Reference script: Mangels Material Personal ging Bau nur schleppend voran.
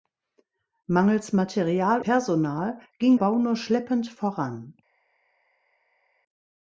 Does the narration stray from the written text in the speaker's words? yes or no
no